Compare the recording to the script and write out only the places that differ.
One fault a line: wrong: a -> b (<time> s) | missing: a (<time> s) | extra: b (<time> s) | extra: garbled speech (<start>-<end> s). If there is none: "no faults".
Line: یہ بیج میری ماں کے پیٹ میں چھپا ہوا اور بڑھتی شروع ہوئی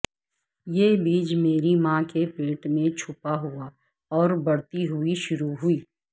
extra: ہوئی (4.9 s)